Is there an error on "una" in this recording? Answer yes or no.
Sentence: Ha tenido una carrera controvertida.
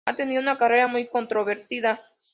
no